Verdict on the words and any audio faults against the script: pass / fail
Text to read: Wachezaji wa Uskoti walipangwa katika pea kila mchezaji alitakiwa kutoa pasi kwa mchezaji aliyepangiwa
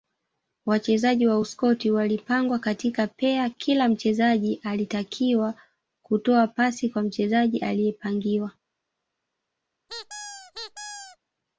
fail